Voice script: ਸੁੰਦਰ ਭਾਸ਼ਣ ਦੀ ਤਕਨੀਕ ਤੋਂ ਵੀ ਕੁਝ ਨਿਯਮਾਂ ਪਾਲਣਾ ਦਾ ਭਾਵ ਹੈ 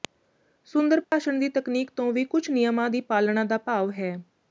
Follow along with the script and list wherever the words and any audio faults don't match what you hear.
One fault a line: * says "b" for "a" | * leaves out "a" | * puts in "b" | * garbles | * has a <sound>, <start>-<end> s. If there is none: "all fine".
* has a dropout, 1.0-1.1 s
* puts in "ਦੀ"